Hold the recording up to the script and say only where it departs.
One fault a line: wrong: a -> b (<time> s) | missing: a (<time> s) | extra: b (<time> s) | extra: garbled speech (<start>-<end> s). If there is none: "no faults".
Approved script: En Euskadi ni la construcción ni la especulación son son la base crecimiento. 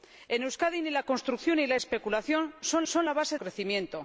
no faults